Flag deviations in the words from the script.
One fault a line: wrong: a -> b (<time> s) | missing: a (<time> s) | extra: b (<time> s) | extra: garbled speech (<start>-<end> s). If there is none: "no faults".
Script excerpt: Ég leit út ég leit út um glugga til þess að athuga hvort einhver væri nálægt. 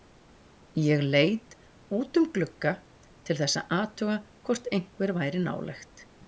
missing: ég leit út (2.2 s)